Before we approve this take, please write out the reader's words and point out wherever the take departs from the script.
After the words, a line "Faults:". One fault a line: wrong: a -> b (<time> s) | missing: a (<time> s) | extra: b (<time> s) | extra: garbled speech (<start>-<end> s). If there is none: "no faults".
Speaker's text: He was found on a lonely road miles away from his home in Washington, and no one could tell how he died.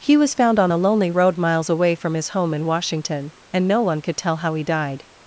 He was found on a lonely road miles away from his home in Washington, and no one could tell how he died.
Faults:
no faults